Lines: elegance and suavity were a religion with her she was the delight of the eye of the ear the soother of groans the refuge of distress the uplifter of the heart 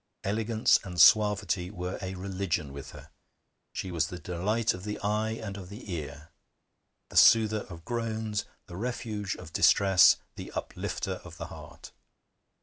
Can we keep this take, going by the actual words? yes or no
no